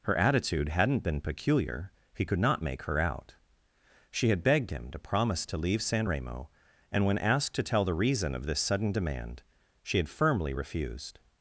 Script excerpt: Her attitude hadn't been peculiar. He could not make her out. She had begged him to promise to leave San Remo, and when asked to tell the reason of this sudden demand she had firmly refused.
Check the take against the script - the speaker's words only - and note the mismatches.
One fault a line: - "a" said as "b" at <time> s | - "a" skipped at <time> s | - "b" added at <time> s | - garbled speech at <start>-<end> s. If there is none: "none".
none